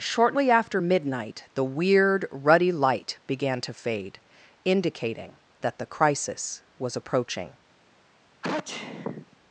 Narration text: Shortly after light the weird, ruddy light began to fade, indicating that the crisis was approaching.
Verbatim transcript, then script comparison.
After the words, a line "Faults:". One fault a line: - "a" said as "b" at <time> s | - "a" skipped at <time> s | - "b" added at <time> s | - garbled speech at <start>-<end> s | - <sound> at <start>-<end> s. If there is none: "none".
Shortly after midnight the weird, ruddy light began to fade, indicating that the crisis was approaching.
Faults:
- "light" said as "midnight" at 0.8 s
- sneeze at 8.4-9.4 s